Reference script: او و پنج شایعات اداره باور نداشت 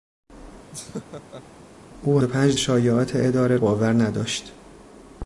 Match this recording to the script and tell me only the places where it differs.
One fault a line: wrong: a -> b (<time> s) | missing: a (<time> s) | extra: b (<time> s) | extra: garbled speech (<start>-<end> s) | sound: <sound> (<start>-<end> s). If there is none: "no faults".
sound: laugh (0.7-1.4 s)